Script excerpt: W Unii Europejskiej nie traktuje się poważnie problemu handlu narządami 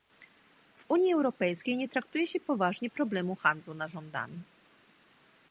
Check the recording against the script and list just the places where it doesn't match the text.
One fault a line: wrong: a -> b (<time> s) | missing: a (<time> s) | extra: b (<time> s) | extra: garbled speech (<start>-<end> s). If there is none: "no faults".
no faults